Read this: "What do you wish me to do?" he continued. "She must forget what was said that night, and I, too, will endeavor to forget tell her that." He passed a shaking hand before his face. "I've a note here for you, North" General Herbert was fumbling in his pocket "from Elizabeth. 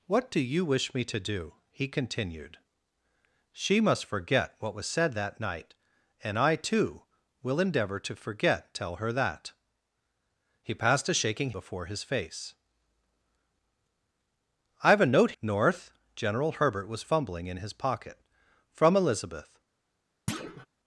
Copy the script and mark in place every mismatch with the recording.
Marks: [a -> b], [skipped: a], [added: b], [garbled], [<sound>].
"What do you wish me to do?" he continued. "She must forget what was said that night, and I, too, will endeavor to forget tell her that." He passed a shaking [skipped: hand] before his face. "I've a note [skipped: here for you,] North" General Herbert was fumbling in his pocket "from Elizabeth. [thud]